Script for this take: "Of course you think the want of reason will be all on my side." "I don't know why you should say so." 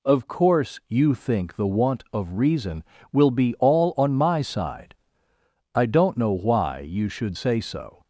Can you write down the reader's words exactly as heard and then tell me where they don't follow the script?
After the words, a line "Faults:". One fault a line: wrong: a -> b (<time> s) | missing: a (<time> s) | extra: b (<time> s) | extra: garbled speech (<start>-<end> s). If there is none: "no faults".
"Of course you think the want of reason will be all on my side." "I don't know why you should say so."
Faults:
no faults